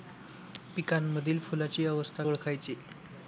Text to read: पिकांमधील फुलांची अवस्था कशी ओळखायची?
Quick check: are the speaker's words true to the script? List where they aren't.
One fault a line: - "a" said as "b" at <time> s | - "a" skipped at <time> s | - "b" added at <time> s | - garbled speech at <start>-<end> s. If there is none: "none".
- "कशी" skipped at 2.2 s